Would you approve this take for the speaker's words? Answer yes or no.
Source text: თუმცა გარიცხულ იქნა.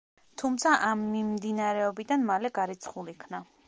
no